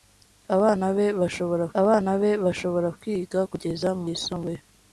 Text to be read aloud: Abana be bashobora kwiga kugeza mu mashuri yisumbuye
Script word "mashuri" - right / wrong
wrong